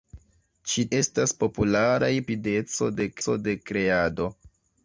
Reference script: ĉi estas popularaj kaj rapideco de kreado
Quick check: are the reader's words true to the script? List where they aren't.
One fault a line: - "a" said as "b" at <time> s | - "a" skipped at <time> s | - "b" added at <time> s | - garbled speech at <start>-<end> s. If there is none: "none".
none